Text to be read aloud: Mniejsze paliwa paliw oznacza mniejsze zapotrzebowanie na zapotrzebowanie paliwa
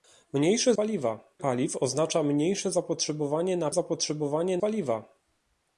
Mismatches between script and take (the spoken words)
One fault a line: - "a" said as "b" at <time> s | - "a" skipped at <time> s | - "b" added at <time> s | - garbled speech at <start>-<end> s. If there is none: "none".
none